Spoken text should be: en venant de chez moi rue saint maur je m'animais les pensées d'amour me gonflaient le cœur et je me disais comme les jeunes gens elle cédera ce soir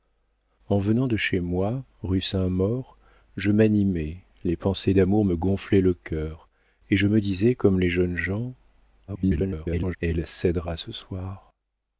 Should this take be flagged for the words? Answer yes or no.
yes